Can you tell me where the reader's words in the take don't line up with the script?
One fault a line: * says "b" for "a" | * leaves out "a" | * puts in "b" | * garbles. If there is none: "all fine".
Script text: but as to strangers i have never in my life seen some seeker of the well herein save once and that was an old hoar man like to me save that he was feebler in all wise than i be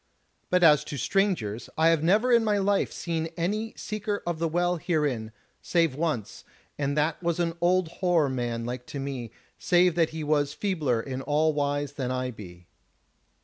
* says "any" for "some"